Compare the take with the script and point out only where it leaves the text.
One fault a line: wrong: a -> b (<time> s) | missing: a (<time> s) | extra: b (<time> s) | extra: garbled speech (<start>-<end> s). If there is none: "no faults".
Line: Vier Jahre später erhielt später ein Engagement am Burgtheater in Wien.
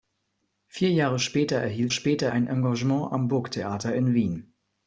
no faults